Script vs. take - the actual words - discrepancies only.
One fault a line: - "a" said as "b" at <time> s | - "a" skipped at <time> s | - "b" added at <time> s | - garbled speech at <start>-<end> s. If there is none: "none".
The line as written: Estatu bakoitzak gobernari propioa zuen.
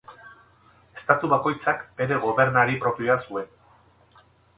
- "bere" added at 2.0 s